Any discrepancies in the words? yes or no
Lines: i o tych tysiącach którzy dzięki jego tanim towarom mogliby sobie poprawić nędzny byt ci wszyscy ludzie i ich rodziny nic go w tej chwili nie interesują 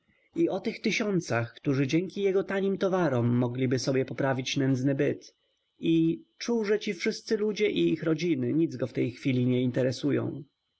yes